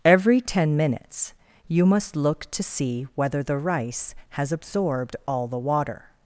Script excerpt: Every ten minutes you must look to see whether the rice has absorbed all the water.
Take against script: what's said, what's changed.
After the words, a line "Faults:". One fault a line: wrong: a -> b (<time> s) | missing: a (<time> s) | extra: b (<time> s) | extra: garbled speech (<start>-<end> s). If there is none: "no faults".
Every ten minutes you must look to see whether the rice has absorbed all the water.
Faults:
no faults